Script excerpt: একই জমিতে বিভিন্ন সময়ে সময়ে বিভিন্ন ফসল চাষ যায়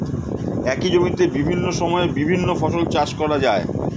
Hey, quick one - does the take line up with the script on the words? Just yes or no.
no